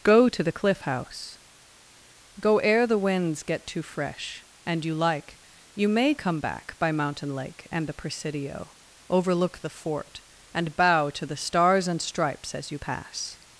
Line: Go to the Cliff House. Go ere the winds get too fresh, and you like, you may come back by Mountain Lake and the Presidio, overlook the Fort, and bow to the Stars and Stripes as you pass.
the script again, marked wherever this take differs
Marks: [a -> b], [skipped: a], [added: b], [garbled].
Go to the Cliff House. Go ere the winds get too fresh, and you like, you may come back by Mountain Lake and the Presidio, overlook the Fort, and bow to the Stars and Stripes as you pass.